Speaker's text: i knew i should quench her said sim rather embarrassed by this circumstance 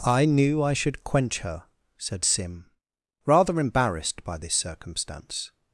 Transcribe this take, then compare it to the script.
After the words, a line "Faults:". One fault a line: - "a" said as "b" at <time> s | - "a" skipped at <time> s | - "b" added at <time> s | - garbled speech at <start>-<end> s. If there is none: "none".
i knew i should quench her said sim rather embarrassed by this circumstance
Faults:
none